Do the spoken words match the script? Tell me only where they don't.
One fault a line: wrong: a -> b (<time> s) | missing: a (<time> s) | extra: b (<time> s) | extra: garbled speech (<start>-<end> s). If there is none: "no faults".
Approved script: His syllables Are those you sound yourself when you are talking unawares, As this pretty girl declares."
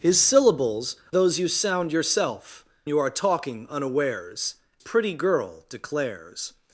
missing: Are (0.9 s)
missing: when (2.6 s)
missing: As this (4.5 s)